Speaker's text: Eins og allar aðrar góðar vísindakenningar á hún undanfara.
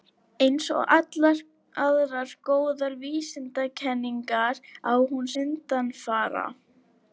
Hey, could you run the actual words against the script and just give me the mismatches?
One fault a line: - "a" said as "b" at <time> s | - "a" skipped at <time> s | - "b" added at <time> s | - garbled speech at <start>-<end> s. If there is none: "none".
none